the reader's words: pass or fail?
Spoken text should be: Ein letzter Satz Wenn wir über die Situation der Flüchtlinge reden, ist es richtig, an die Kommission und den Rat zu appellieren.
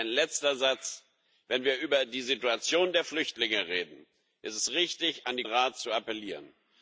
fail